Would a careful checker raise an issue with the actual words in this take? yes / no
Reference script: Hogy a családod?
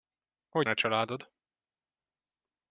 no